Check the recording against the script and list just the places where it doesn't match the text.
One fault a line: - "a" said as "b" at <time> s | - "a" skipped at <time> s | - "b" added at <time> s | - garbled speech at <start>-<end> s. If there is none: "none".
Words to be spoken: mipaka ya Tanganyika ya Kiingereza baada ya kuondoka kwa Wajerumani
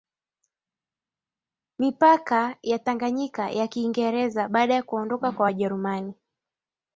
none